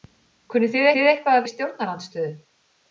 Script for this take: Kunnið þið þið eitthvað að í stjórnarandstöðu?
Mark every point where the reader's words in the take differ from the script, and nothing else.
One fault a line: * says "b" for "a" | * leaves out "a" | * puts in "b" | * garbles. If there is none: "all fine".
all fine